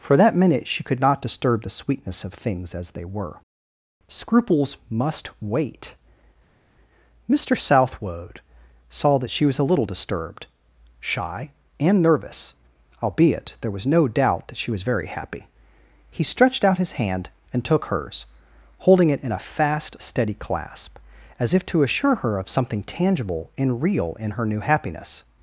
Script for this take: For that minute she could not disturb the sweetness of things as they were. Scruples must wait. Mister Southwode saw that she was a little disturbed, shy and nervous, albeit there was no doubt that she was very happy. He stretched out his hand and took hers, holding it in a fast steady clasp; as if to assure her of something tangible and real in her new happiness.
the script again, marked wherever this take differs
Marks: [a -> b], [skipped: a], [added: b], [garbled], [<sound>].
For that minute she could not disturb the sweetness of things as they were. Scruples must wait. Mister Southwode saw that she was a little disturbed, shy and nervous, albeit there was no doubt that she was very happy. He stretched out his hand and took hers, holding it in a fast steady clasp; as if to assure her of something tangible and real in her new happiness.